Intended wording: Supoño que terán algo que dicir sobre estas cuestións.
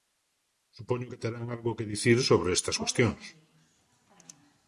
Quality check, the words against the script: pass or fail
pass